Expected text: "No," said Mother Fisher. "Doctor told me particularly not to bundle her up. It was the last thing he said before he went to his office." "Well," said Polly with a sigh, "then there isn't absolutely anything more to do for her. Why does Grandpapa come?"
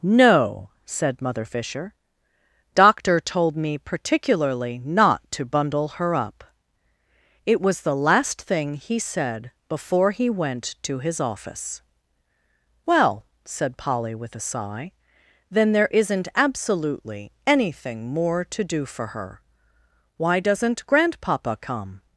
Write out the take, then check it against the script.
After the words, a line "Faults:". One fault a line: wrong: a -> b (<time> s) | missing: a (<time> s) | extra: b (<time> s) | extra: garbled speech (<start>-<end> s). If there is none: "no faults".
"No," said Mother Fisher. "Doctor told me particularly not to bundle her up. It was the last thing he said before he went to his office." "Well," said Polly with a sigh, "then there isn't absolutely anything more to do for her. Why doesn't Grandpapa come?"
Faults:
wrong: does -> doesn't (20.4 s)